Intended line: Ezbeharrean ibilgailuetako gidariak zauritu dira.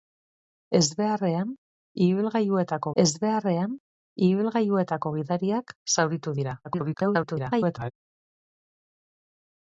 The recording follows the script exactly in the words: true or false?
false